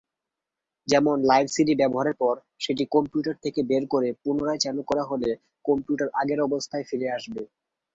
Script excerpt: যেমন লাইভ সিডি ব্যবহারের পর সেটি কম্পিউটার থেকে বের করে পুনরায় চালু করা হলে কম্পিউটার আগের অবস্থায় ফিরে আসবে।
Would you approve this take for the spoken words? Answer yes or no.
yes